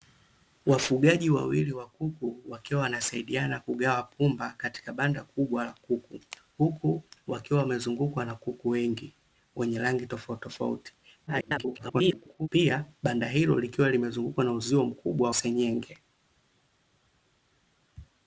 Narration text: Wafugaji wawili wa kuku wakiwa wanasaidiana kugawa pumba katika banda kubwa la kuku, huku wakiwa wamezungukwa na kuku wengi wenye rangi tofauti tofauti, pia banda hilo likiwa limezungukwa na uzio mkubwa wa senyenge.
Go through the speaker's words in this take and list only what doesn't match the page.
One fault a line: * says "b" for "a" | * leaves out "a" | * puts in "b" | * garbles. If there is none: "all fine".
* garbles
* leaves out "wa"